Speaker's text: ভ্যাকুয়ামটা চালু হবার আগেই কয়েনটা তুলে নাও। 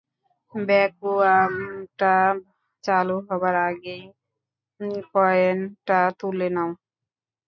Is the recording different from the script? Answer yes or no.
no